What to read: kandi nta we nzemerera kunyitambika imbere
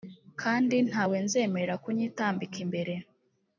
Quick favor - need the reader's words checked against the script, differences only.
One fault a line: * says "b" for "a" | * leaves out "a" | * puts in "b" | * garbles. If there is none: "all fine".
all fine